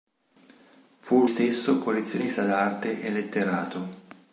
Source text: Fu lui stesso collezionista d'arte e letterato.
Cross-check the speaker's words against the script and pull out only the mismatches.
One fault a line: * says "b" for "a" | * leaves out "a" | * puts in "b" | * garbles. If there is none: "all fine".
* leaves out "lui"